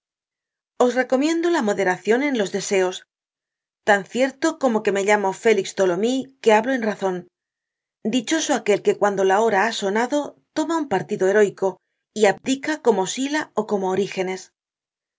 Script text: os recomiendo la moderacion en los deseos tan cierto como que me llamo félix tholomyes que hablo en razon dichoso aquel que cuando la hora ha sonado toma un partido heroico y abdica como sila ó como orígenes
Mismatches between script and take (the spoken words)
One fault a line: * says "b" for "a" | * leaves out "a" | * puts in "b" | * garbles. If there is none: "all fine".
all fine